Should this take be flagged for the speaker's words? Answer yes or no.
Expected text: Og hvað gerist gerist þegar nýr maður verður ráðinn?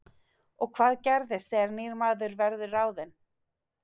yes